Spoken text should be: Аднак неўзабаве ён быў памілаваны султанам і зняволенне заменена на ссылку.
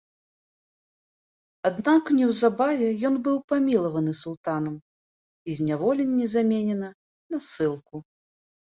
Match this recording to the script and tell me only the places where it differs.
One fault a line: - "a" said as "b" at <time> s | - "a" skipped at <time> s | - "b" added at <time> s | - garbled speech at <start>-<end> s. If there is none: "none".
none